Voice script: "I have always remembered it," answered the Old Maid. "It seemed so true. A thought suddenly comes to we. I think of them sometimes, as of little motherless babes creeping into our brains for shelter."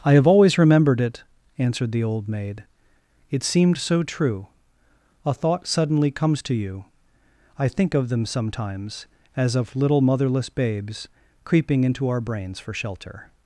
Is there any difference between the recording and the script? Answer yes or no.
yes